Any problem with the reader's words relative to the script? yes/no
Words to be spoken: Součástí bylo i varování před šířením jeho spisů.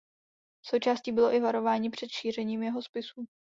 no